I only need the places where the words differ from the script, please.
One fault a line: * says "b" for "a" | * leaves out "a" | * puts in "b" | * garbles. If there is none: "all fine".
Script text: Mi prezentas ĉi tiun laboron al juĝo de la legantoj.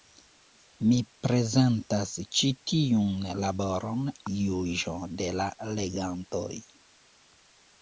* leaves out "al"